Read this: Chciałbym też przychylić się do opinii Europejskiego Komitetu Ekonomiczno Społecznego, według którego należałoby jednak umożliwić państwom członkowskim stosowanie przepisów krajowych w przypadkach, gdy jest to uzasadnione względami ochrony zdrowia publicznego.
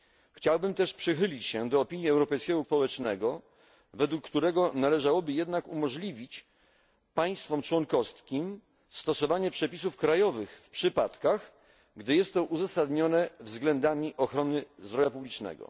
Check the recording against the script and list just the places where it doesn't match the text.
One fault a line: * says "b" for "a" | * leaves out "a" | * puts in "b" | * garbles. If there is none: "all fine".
* leaves out "Komitetu Ekonomiczno"